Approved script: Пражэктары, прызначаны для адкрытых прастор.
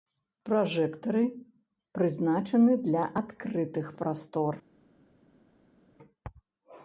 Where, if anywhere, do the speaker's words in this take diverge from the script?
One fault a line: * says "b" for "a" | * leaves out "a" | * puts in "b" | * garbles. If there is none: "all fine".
all fine